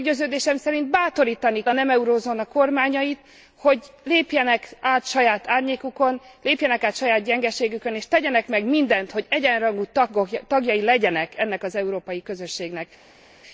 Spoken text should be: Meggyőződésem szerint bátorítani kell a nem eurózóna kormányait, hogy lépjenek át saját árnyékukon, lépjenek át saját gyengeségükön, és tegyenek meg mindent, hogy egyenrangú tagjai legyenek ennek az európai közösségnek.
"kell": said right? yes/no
no